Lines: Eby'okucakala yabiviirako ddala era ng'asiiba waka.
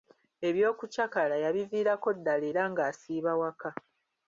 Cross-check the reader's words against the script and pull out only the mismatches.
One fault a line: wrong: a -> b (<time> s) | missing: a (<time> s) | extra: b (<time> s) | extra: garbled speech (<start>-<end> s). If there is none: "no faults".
no faults